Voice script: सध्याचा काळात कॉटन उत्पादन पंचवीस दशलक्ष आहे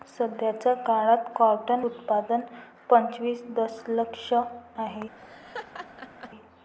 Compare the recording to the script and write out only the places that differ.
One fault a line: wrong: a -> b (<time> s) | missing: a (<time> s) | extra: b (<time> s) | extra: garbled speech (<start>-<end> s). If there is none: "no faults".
no faults